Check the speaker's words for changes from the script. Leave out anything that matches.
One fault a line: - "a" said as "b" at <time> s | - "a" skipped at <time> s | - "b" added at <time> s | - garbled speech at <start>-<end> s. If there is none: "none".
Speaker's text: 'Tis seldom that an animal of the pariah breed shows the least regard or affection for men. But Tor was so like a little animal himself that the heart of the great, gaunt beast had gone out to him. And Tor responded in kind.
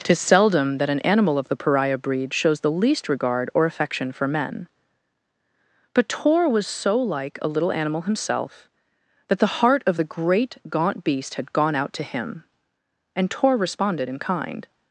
none